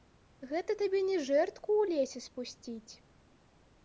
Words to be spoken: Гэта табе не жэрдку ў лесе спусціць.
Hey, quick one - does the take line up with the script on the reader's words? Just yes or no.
yes